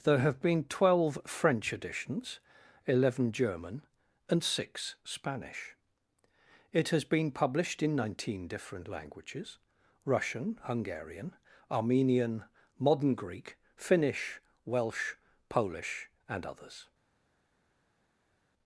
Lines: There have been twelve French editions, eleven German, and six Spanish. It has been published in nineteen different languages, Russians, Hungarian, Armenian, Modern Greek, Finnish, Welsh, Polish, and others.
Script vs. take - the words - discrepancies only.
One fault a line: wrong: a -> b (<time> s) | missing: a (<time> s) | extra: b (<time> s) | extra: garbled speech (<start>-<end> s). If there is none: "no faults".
wrong: Russians -> Russian (10.1 s)